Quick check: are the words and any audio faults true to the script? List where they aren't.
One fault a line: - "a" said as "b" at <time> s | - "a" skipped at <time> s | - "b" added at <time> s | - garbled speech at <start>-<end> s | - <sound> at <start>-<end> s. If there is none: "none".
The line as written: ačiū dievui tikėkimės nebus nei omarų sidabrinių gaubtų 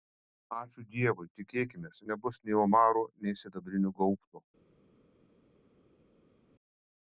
- "nei" added at 3.3 s